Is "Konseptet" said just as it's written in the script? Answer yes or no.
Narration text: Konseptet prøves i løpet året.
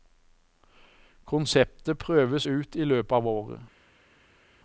yes